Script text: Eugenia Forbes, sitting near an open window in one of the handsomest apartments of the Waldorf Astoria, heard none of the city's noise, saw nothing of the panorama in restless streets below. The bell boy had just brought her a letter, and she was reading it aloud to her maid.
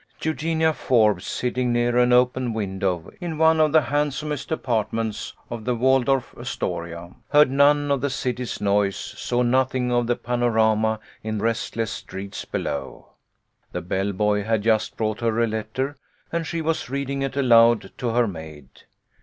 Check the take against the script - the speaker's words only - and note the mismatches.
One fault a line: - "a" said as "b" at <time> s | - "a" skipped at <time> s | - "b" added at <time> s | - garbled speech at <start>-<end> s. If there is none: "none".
none